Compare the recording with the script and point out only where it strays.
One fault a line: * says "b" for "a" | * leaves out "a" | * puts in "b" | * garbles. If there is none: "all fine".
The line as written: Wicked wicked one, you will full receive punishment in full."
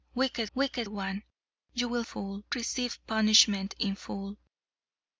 all fine